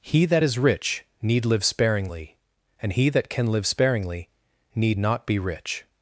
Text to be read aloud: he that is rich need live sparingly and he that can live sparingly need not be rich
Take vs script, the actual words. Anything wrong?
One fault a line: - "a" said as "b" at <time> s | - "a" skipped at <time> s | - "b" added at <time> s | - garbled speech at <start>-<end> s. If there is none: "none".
none